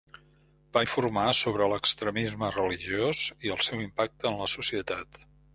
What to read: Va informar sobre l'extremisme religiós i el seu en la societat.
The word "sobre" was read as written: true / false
true